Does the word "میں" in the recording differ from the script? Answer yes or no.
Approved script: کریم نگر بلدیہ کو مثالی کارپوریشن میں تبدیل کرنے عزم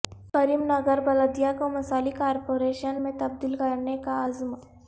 no